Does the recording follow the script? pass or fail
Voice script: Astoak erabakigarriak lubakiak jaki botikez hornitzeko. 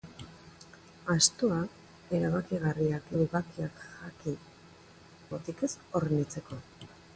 pass